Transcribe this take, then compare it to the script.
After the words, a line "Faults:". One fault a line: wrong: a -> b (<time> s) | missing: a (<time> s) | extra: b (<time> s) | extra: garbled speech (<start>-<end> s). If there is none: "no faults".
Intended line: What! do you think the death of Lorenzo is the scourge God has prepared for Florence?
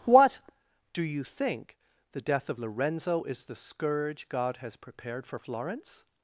What! do you think the death of Lorenzo is the scourge God has prepared for Florence?
Faults:
no faults